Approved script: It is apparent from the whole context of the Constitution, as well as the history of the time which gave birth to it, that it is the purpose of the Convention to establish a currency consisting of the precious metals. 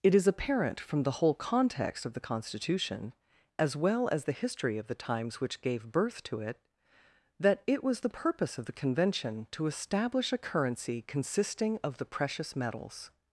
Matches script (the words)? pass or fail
fail